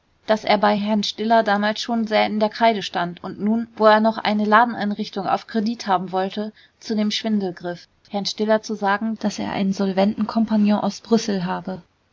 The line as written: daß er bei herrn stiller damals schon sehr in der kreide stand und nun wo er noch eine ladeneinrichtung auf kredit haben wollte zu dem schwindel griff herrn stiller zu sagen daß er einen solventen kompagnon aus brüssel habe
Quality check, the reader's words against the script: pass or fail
pass